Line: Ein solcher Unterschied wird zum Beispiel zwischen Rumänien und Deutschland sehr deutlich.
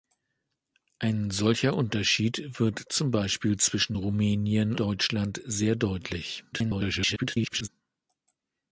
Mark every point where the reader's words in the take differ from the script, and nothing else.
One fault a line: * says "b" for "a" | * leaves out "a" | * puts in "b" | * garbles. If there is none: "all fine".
* leaves out "und"
* garbles